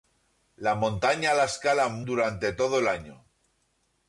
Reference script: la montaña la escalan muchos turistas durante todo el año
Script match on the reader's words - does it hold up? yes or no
no